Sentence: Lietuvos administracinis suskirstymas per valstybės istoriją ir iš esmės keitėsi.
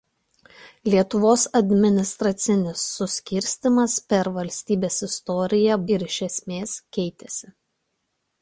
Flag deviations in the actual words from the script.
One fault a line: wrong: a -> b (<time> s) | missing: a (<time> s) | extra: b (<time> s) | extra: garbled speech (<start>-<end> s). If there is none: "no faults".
no faults